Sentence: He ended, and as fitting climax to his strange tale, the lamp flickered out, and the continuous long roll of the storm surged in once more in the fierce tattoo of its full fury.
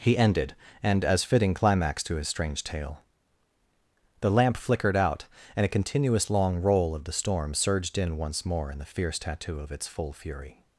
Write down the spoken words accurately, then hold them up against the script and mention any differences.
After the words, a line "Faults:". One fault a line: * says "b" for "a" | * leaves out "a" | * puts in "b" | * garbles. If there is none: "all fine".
He ended, and as fitting climax to his strange tale, the lamp flickered out, and a continuous long roll of the storm surged in once more in the fierce tattoo of its full fury.
Faults:
* says "a" for "the"